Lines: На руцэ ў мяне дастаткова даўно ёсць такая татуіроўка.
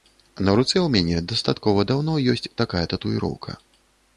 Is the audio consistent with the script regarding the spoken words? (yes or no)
yes